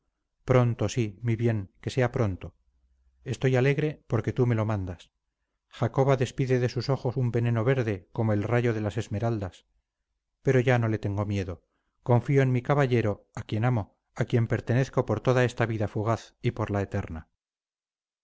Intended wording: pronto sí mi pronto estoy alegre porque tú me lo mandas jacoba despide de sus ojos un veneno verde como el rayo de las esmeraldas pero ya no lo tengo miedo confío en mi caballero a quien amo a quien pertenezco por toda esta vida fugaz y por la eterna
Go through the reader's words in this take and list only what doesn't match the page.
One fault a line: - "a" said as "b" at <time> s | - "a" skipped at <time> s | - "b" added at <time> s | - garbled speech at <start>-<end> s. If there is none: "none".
- "bien que sea" added at 1.4 s
- "lo" said as "le" at 10.9 s